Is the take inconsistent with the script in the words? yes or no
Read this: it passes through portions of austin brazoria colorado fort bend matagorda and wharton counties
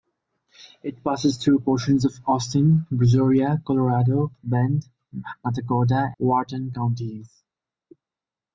yes